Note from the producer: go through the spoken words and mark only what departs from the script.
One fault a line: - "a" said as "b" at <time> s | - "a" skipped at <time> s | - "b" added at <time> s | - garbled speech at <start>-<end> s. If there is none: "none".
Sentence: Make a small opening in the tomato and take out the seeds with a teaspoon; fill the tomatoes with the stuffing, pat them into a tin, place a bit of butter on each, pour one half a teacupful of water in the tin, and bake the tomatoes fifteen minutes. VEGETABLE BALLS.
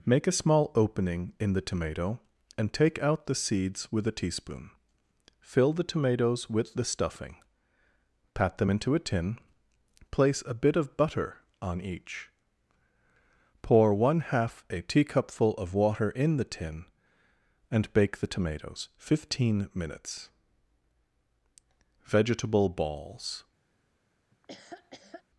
none